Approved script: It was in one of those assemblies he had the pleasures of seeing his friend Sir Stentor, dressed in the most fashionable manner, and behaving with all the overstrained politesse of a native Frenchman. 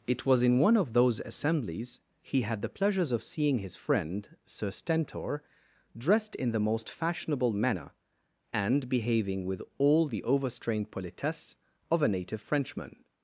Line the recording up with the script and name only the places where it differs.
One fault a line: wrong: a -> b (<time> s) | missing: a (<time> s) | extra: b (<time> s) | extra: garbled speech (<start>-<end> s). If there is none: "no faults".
no faults